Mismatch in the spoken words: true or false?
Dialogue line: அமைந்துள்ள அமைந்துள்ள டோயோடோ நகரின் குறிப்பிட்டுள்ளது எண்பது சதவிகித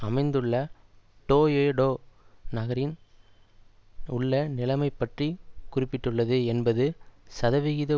true